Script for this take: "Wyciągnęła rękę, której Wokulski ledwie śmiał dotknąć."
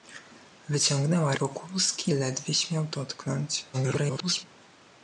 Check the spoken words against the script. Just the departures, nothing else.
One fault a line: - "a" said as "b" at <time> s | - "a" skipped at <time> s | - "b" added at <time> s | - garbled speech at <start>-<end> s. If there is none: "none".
- "rękę której" skipped at 1.4 s
- garbled speech at 3.7-4.5 s